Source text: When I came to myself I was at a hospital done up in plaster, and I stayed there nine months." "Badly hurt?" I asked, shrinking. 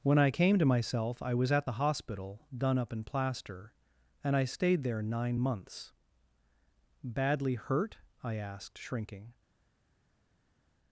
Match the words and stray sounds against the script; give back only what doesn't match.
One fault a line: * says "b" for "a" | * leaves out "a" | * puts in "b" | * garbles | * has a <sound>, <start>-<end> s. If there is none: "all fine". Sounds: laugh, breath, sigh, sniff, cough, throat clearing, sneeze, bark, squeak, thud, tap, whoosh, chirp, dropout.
* says "the" for "a"